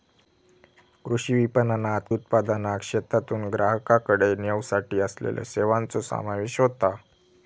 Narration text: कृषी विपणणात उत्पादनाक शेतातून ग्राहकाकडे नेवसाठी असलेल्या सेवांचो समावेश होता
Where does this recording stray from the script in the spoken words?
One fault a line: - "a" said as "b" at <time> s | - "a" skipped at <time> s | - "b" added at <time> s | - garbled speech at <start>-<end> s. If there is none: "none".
none